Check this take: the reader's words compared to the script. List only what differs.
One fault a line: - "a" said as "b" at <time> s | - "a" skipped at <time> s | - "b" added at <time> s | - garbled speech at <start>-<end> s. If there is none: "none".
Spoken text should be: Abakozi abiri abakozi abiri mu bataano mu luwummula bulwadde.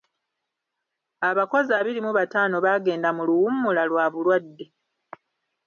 - "abakozi abiri" skipped at 2.0 s
- "baagenda" added at 2.6 s
- "lwa" added at 3.9 s